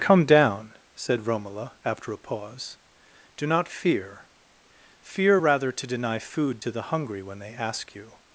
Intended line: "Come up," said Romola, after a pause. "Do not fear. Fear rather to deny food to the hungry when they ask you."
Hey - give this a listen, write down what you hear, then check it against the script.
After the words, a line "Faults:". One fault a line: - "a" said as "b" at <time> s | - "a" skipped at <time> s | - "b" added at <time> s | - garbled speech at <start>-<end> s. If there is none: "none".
"Come down," said Romola, after a pause. "Do not fear. Fear rather to deny food to the hungry when they ask you."
Faults:
- "up" said as "down" at 0.2 s